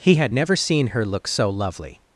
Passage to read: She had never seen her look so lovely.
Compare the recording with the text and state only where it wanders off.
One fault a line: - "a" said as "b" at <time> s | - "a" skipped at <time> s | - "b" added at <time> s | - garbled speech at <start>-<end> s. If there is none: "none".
- "She" said as "He" at 0.0 s